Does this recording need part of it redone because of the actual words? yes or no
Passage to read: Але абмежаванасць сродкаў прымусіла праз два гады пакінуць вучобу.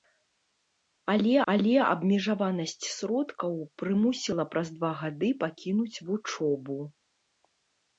yes